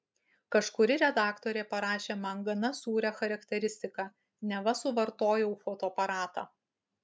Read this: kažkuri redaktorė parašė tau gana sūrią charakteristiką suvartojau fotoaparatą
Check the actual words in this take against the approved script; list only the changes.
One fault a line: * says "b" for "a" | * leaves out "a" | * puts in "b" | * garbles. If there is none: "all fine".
* says "man" for "tau"
* puts in "neva"